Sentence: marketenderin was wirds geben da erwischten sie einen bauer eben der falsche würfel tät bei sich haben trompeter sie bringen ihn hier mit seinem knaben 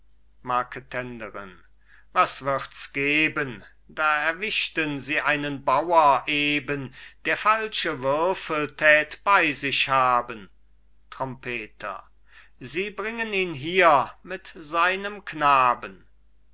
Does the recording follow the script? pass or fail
pass